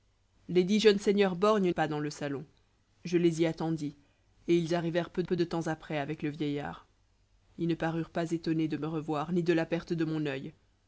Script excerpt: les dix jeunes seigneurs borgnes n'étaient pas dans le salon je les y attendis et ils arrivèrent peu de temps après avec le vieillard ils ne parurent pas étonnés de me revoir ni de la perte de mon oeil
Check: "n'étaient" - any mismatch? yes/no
yes